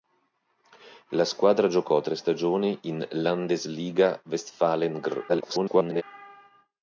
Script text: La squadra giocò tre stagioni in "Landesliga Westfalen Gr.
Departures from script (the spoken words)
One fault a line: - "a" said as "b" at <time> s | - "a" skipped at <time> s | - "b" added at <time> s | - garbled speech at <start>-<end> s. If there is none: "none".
- garbled speech at 5.3-6.0 s